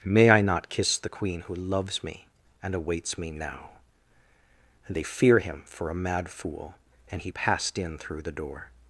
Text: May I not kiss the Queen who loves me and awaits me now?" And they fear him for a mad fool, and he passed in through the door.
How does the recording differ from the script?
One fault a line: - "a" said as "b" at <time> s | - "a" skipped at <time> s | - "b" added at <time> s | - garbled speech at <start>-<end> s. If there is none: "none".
none